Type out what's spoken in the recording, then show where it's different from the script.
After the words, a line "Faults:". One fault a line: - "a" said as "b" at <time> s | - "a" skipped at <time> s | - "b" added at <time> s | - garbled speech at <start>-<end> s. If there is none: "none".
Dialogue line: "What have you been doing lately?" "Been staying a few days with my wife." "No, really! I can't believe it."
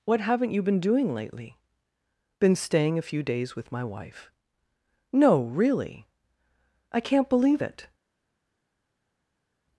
"What haven't you been doing lately?" "Been staying a few days with my wife." "No, really! I can't believe it."
Faults:
- "have" said as "haven't" at 0.2 s